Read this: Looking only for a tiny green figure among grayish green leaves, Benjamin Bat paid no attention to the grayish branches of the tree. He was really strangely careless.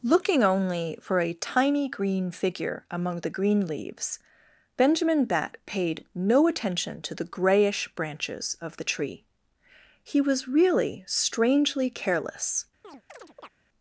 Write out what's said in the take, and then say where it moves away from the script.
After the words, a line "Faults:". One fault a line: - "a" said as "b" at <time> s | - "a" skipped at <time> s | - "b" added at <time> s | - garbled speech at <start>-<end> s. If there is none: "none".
Looking only for a tiny green figure among the green leaves, Benjamin Bat paid no attention to the grayish branches of the tree. He was really strangely careless.
Faults:
- "grayish" said as "the" at 3.2 s